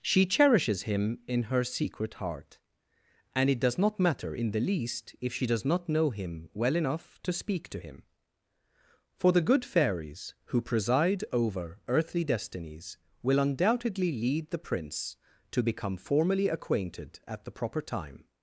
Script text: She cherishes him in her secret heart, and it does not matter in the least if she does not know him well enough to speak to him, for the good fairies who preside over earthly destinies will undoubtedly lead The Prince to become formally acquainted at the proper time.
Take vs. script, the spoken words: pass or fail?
pass